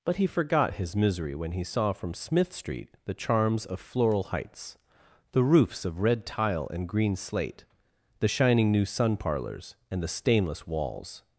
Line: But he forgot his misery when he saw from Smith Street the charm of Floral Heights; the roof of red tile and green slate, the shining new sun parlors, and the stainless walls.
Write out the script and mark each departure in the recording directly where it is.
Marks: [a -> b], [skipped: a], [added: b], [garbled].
But he forgot his misery when he saw from Smith Street the [charm -> charms] of Floral Heights; the [roof -> roofs] of red tile and green slate, the shining new sun parlors, and the stainless walls.